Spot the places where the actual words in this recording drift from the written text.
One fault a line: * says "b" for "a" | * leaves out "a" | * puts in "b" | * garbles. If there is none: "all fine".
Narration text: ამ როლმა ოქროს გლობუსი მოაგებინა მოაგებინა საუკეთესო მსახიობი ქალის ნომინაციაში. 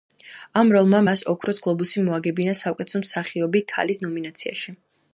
* puts in "მას"
* leaves out "მოაგებინა"